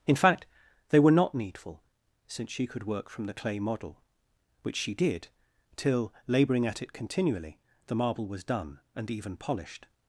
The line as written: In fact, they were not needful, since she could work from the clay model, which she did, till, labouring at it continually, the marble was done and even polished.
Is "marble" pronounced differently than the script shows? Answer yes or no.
no